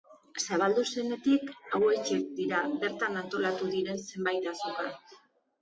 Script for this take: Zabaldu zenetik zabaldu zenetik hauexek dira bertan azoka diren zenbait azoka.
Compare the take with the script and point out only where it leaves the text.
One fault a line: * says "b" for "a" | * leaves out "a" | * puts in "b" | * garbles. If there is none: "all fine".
* leaves out "zabaldu zenetik"
* says "antolatu" for "azoka"